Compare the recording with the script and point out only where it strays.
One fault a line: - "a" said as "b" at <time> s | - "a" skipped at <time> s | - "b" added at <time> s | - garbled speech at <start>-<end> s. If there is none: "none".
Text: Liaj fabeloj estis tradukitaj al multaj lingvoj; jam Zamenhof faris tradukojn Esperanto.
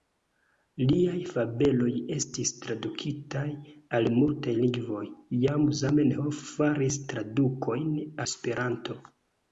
none